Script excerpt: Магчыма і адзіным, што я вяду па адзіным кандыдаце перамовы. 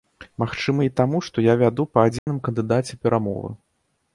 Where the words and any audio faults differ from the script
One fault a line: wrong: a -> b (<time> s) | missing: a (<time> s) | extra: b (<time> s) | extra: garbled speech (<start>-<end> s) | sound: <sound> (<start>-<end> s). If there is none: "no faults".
wrong: адзіным -> таму (1.0 s)
sound: dropout (2.2-2.3 s)